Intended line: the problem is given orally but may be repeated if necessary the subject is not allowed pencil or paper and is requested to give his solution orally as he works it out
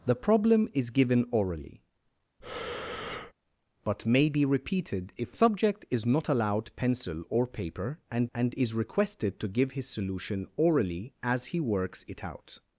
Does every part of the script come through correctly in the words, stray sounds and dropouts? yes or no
no